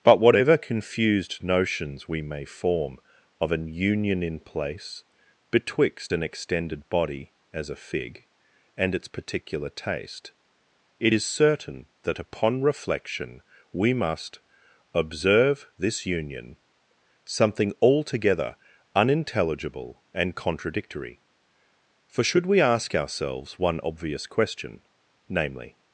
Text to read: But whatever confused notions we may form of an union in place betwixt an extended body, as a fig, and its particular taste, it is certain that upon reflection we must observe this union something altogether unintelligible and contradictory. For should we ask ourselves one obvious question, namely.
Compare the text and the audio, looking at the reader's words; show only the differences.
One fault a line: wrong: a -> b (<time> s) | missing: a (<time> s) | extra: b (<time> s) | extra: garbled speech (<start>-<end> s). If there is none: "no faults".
no faults